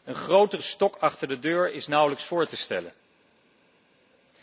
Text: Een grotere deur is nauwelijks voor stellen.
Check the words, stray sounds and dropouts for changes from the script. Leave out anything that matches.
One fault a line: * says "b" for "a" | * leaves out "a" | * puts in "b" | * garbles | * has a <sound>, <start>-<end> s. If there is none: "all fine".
* puts in "stok achter de"
* puts in "te"